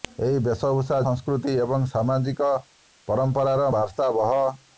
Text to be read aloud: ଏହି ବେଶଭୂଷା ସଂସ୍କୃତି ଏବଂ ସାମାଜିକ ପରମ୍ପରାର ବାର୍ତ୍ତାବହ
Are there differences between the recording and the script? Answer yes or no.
no